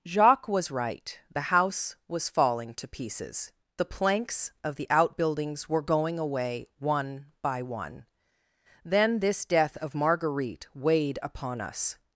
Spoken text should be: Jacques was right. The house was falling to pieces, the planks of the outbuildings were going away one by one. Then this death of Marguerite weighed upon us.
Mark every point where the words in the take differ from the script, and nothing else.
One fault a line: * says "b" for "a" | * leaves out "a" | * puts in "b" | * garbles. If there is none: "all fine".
all fine